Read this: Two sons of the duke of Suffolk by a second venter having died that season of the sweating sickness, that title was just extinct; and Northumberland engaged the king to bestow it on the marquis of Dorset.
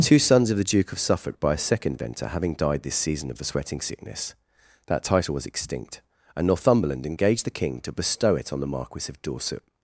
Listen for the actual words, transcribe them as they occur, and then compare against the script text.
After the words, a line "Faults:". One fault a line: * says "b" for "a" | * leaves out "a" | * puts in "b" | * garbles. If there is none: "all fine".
Two sons of the duke of Suffolk by a second venter having died this season of the sweating sickness, that title was extinct; and Northumberland engaged the king to bestow it on the marquis of Dorset.
Faults:
* says "this" for "that"
* leaves out "just"